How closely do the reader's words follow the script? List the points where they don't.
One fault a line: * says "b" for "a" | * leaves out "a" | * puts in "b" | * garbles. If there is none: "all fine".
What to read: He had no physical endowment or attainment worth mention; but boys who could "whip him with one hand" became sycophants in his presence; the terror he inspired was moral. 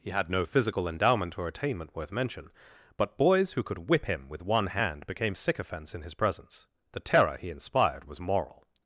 all fine